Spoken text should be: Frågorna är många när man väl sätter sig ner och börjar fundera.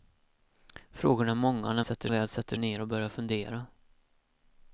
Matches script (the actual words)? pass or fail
fail